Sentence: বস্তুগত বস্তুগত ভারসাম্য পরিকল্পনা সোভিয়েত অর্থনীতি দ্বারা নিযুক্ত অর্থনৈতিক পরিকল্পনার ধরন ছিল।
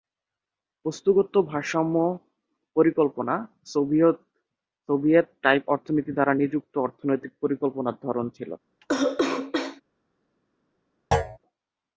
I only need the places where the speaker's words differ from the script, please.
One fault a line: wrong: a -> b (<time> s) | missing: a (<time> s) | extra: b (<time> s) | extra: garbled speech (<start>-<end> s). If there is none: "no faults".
missing: বস্তুগত (1.3 s)
extra: টাইপ (5.4 s)